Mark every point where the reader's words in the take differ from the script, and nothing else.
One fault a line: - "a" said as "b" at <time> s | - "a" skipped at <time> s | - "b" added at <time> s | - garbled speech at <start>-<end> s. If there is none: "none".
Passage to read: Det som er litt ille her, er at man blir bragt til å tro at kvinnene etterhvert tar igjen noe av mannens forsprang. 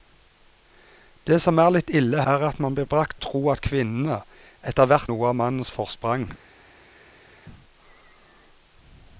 - "her" skipped at 2.2 s
- "til" skipped at 3.2 s
- "tar igjen" skipped at 5.1 s